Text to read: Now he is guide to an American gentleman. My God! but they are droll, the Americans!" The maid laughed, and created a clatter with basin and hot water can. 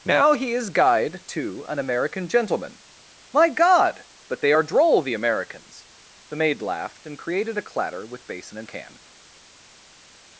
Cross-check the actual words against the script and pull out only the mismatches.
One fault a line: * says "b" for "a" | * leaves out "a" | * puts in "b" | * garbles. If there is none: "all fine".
* leaves out "hot water"